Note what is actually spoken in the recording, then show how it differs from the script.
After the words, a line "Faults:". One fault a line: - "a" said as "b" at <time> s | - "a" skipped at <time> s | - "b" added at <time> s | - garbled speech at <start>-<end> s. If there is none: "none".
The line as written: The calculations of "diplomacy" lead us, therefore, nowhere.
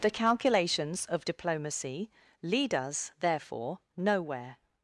The calculations of "diplomacy" lead us, therefore, nowhere.
Faults:
none